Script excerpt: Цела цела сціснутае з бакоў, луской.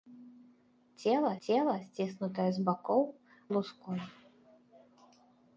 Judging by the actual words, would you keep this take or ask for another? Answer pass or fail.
pass